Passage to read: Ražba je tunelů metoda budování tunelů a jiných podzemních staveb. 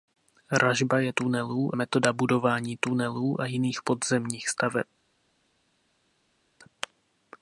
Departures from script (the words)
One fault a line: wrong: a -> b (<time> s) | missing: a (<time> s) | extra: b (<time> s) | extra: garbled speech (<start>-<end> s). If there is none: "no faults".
no faults